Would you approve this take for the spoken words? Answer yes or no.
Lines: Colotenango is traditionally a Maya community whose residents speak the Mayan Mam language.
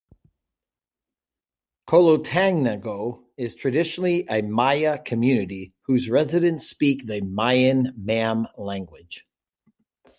yes